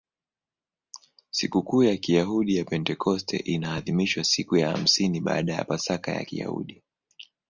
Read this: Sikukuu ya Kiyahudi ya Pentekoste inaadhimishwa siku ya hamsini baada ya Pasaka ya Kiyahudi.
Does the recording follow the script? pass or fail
pass